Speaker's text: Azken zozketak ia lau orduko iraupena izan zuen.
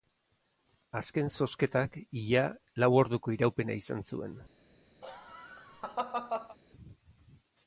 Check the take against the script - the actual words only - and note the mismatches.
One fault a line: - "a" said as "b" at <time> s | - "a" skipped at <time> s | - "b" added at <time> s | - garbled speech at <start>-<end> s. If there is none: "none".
none